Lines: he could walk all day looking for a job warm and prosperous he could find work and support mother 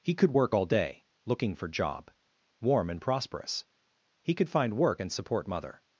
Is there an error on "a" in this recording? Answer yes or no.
yes